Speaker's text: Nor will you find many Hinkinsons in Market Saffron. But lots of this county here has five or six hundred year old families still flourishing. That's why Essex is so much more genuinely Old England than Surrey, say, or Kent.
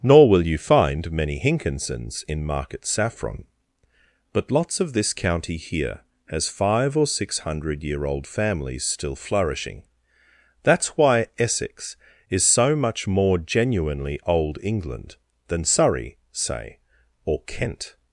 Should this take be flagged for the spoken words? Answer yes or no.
no